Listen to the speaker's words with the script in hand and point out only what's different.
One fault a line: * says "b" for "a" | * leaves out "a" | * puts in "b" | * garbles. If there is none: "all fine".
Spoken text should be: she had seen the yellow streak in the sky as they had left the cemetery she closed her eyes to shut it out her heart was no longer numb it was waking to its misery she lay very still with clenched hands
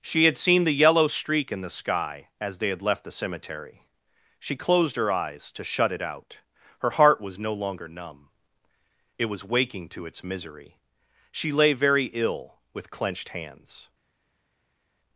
* says "ill" for "still"